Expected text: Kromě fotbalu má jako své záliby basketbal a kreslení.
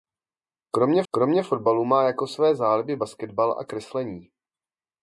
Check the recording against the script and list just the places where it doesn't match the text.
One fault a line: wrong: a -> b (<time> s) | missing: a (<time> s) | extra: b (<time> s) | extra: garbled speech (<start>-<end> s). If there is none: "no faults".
extra: kromě (1.1 s)